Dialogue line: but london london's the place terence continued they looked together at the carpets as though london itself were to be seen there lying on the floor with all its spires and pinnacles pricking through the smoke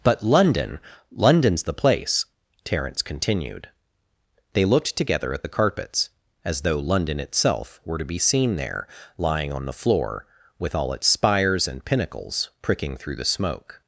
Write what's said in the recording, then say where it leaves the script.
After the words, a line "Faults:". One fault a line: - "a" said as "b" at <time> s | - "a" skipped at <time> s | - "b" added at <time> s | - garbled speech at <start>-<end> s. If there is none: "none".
but london london's the place terence continued they looked together at the carpets as though london itself were to be seen there lying on the floor with all its spires and pinnacles pricking through the smoke
Faults:
none